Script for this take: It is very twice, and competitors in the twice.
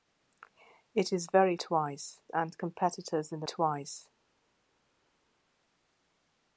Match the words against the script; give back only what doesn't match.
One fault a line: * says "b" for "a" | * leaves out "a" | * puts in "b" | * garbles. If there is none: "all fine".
all fine